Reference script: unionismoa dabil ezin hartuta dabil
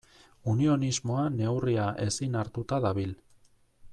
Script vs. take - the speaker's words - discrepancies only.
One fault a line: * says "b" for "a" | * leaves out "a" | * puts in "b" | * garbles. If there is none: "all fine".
* says "neurria" for "dabil"